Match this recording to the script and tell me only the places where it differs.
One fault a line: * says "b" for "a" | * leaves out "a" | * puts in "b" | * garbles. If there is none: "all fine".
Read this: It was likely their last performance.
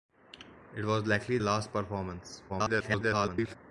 * leaves out "their"
* garbles